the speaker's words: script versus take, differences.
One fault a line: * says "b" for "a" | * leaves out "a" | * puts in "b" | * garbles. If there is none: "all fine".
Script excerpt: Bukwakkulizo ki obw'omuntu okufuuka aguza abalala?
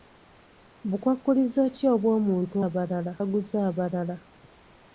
* says "abalala" for "okufuuka"